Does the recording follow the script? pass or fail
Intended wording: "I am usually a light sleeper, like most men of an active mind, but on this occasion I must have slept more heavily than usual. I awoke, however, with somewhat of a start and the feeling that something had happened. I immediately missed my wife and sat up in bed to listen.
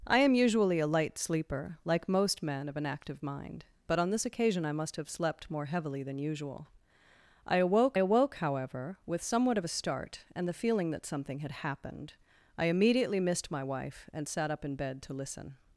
fail